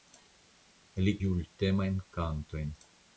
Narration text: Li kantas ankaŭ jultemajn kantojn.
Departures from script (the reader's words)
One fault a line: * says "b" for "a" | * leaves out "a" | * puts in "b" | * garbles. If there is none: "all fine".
* leaves out "kantas ankaŭ"